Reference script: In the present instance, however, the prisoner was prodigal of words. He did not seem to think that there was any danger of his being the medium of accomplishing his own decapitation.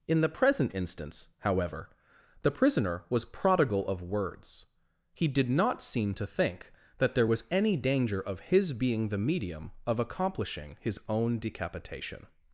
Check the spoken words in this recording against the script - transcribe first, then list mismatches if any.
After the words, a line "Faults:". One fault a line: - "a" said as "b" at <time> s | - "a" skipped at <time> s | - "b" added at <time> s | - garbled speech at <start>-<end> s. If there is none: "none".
In the present instance, however, the prisoner was prodigal of words. He did not seem to think that there was any danger of his being the medium of accomplishing his own decapitation.
Faults:
none